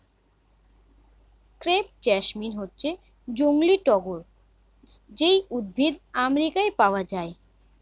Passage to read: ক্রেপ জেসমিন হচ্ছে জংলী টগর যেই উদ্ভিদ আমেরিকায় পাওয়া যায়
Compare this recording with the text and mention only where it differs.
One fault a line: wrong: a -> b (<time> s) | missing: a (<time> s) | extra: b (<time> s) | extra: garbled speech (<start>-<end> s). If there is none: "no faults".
no faults